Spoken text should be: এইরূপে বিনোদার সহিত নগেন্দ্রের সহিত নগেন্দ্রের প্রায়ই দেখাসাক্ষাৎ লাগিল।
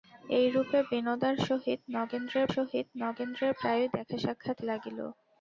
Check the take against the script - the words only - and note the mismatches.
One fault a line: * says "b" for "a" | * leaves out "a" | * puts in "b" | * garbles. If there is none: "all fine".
all fine